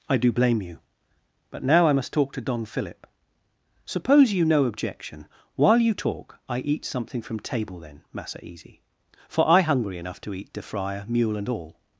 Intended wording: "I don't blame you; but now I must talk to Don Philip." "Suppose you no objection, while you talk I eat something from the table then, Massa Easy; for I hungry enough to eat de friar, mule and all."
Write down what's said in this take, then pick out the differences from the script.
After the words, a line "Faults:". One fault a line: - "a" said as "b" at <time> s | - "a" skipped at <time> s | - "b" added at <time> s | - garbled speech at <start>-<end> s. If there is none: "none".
"I do blame you; but now I must talk to Don Philip." "Suppose you no objection, while you talk I eat something from table then, Massa Easy; for I hungry enough to eat de friar, mule and all."
Faults:
- "don't" said as "do" at 0.2 s
- "the" skipped at 7.4 s